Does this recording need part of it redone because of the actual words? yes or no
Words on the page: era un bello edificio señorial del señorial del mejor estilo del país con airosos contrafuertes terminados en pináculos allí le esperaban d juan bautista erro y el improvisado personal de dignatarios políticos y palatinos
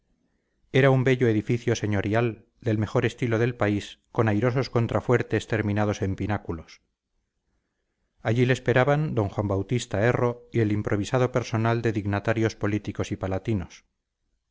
yes